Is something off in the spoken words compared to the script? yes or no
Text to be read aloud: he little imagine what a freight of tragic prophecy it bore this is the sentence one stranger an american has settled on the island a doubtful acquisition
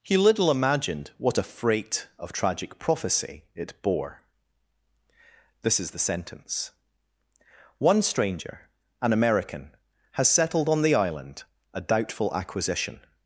yes